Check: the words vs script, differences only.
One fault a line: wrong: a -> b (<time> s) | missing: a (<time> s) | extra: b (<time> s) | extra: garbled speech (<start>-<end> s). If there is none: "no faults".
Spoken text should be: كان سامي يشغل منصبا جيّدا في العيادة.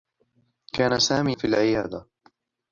missing: يشغل منصبا جيّدا (1.4 s)